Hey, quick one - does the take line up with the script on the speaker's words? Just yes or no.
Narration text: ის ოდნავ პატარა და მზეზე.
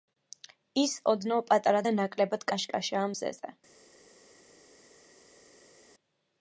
no